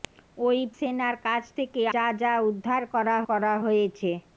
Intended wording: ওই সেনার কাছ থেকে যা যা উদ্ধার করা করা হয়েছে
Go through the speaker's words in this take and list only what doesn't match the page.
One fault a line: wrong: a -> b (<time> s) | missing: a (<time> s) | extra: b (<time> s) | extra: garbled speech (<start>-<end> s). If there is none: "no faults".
no faults